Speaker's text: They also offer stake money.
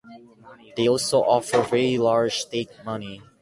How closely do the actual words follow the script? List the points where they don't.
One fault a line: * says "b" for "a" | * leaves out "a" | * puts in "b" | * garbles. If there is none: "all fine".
* puts in "very large"